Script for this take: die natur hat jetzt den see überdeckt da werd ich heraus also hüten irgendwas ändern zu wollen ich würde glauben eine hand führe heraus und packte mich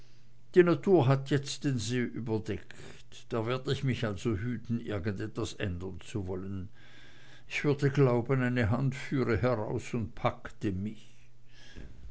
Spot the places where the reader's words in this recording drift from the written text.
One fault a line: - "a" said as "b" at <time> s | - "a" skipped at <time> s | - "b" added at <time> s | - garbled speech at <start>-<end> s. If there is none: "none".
- "heraus" said as "mich" at 3.8 s